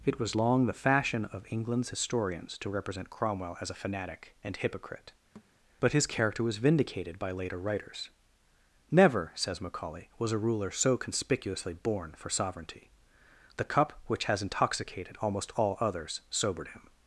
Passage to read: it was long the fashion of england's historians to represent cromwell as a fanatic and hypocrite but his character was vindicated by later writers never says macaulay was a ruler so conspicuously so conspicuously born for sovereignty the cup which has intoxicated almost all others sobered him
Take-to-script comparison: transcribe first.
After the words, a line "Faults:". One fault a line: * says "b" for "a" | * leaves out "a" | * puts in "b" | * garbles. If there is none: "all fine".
it was long the fashion of england's historians to represent cromwell as a fanatic and hypocrite but his character was vindicated by later writers never says macaulay was a ruler so conspicuously born for sovereignty the cup which has intoxicated almost all others sobered him
Faults:
* leaves out "so conspicuously"